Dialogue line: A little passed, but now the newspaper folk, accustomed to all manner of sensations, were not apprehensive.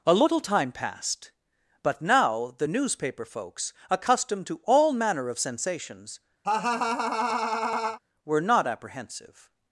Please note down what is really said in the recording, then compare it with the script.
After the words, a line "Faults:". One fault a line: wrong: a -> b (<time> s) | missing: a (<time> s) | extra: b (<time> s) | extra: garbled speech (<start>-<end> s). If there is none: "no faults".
A little time passed, but now the newspaper folks, accustomed to all manner of sensations, were not apprehensive.
Faults:
extra: time (0.4 s)
wrong: folk -> folks (3.2 s)